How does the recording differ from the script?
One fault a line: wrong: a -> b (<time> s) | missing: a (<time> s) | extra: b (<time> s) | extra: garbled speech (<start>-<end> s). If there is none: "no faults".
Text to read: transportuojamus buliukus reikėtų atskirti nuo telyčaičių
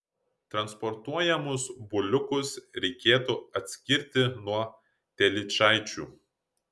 no faults